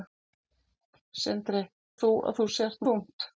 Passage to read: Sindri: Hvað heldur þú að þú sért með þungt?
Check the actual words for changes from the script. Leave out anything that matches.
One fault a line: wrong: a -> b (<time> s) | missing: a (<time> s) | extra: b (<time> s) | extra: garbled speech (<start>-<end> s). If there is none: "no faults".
missing: Hvað heldur (1.6 s)
missing: með (2.8 s)